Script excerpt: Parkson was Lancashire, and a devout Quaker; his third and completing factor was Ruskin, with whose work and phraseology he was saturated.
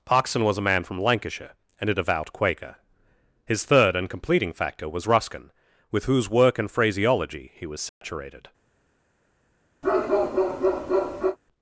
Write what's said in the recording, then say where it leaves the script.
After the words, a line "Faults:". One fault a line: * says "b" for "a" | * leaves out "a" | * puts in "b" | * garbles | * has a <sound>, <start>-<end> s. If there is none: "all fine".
Parkson was a man from Lancashire, and a devout Quaker; his third and completing factor was Ruskin, with whose work and phraseology he was saturated.
Faults:
* puts in "a man from"
* has a dropout, 7.9-8.0 s
* has a bark, 9.8-11.4 s